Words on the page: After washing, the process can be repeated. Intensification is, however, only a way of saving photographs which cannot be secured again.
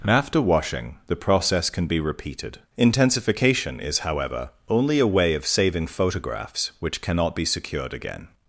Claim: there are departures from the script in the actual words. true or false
false